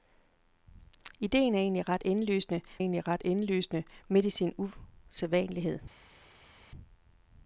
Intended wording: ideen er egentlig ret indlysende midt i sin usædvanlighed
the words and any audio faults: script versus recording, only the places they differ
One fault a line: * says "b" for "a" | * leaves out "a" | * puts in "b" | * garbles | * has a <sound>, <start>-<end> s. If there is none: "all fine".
* puts in "egentlig ret indlysende"